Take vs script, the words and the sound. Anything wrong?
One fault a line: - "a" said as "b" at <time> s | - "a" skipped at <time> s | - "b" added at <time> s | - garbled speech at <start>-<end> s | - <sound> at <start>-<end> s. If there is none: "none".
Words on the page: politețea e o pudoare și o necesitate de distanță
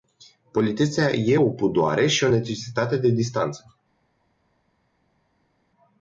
none